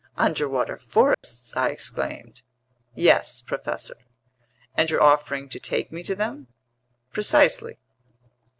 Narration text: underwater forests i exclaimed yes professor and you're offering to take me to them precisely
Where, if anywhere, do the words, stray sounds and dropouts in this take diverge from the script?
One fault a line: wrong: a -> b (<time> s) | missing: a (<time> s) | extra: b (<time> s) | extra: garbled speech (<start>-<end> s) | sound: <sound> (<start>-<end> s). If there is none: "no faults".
sound: dropout (1.1-1.2 s)